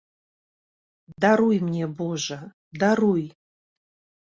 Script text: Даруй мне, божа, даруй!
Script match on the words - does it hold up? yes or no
yes